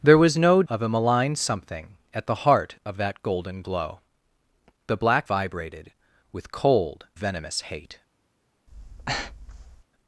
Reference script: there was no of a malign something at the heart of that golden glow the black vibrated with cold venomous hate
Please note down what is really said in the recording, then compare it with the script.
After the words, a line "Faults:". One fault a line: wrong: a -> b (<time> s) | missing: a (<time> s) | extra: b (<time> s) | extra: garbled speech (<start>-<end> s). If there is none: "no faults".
there was no of a malign something at the heart of that golden glow the black vibrated with cold venomous hate
Faults:
no faults